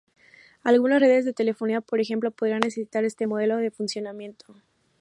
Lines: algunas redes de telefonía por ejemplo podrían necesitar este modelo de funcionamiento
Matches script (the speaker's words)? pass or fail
pass